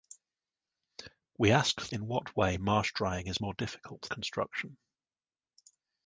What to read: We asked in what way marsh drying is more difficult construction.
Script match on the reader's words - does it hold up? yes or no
yes